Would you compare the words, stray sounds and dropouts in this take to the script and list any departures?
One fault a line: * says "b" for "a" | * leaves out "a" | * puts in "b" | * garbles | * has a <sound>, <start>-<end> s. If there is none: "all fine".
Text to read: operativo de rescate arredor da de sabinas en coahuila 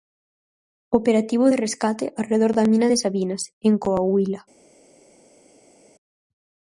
* puts in "mina"